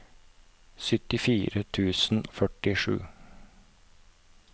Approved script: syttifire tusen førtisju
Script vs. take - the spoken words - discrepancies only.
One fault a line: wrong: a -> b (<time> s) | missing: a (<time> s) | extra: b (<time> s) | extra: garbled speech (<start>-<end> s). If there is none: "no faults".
no faults